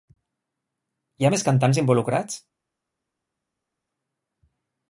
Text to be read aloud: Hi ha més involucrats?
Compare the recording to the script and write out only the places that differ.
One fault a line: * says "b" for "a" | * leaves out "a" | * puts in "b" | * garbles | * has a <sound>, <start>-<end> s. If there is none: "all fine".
* puts in "cantants"